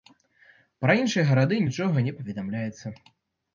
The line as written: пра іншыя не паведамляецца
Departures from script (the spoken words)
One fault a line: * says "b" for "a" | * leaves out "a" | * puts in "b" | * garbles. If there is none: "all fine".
* puts in "гарады нічога"